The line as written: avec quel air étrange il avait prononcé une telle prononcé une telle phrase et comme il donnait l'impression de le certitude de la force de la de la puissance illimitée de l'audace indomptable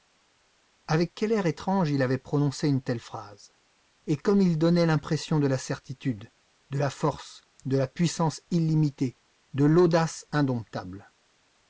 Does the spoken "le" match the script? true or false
false